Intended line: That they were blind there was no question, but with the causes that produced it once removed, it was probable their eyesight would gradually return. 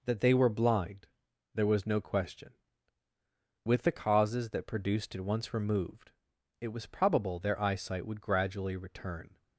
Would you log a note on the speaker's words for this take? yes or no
yes